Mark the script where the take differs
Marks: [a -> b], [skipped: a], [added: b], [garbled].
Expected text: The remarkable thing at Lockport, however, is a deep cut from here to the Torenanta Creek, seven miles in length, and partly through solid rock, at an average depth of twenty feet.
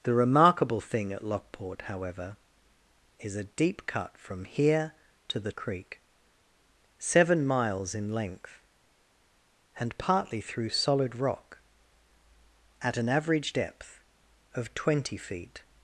The remarkable thing at Lockport, however, is a deep cut from here to the [skipped: Torenanta] Creek, seven miles in length, and partly through solid rock, at an average depth of twenty feet.